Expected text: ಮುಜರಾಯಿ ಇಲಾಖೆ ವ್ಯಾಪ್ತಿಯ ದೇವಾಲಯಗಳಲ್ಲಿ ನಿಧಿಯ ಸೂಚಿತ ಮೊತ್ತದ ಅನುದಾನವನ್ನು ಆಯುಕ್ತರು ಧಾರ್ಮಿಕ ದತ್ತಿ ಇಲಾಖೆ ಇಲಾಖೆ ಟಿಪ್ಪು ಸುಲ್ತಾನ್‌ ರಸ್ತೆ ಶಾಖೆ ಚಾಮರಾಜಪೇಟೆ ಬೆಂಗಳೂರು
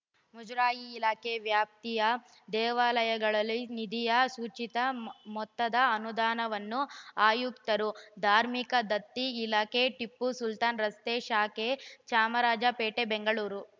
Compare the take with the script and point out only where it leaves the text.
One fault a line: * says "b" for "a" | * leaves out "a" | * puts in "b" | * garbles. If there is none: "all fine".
* leaves out "ಇಲಾಖೆ"